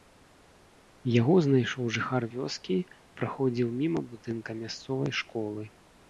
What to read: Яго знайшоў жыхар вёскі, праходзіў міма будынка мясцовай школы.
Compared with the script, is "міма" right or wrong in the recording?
right